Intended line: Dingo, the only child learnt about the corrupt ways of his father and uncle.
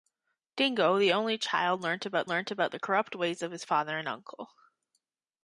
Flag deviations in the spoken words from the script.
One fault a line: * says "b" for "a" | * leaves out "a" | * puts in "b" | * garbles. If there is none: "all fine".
* puts in "learnt about"